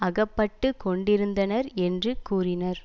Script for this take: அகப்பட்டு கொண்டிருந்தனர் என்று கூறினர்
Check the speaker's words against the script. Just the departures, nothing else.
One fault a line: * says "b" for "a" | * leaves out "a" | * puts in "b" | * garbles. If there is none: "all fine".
all fine